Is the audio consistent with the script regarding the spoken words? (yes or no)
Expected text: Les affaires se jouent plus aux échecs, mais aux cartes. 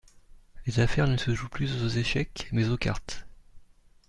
no